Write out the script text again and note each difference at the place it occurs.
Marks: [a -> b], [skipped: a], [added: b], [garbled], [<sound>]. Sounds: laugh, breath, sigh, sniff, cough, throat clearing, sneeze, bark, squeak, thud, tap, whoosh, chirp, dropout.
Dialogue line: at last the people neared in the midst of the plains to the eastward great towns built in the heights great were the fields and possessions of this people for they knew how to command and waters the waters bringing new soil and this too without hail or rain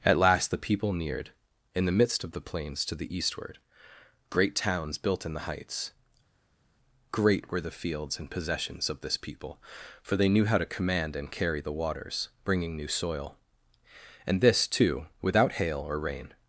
at last the people neared in the midst of the plains to the eastward great towns built in the heights great were the fields and possessions of this people for they knew how to command and [waters -> carry] the waters bringing new soil and this too without hail or rain